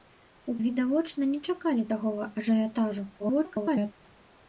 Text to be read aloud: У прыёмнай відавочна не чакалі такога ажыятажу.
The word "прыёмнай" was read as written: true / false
false